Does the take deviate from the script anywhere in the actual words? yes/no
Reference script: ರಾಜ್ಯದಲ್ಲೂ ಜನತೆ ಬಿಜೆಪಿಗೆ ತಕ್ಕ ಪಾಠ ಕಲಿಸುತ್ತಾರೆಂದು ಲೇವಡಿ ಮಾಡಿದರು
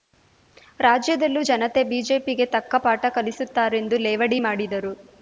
no